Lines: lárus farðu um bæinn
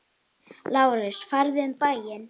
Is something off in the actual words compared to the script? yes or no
no